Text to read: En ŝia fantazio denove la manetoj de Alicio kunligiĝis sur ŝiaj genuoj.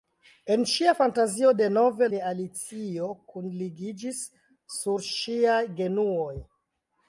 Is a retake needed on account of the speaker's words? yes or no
yes